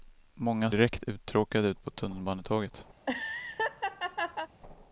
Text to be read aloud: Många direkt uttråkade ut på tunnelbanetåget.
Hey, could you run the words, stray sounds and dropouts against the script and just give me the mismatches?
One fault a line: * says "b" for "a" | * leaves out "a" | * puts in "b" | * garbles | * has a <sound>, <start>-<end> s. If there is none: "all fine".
* has a laugh, 3.0-4.5 s